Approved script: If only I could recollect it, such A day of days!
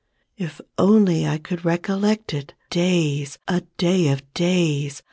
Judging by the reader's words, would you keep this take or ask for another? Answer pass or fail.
fail